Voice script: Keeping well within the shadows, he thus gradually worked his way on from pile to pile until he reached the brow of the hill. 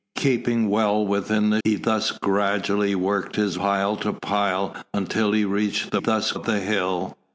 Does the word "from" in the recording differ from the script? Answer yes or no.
yes